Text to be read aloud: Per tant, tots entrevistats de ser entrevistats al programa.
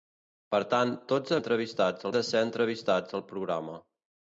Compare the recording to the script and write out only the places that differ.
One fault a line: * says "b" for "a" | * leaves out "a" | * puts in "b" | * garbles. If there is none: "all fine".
all fine